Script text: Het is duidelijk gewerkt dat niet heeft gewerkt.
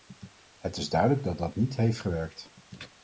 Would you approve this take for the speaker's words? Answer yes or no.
no